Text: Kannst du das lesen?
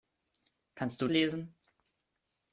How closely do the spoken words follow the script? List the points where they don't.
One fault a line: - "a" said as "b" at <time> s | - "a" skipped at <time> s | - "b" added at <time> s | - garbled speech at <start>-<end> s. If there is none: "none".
- "das" skipped at 1.1 s